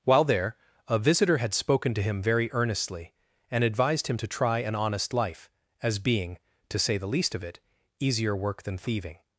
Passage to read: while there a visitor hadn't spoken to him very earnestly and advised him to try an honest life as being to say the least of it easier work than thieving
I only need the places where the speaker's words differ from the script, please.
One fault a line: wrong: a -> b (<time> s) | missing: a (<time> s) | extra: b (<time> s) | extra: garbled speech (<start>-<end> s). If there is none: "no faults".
wrong: hadn't -> had (1.4 s)